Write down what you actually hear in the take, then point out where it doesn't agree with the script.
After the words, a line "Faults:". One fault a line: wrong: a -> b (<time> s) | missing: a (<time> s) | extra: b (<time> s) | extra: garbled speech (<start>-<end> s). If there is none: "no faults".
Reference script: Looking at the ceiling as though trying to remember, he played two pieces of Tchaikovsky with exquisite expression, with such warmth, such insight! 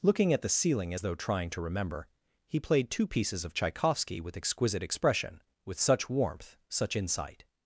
Looking at the ceiling as though trying to remember, he played two pieces of Tchaikovsky with exquisite expression, with such warmth, such insight!
Faults:
no faults